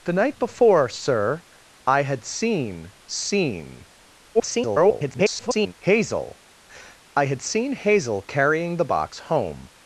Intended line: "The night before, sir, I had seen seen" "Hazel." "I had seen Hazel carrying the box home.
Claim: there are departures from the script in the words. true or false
true